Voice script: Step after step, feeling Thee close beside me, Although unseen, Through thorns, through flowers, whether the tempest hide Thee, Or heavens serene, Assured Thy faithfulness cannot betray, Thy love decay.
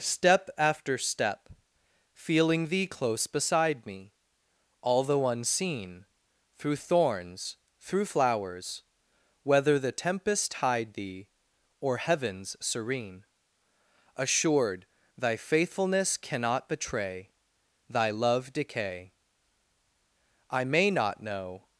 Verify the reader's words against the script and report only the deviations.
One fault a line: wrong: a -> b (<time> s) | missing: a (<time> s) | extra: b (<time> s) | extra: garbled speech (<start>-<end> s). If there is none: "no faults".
extra: I may not know (20.5 s)